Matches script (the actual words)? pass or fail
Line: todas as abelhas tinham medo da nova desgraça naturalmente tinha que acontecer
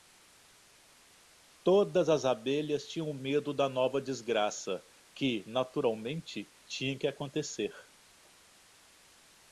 fail